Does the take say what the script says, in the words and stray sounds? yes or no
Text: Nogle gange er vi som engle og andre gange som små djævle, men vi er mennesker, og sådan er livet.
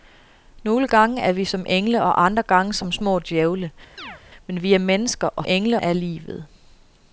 no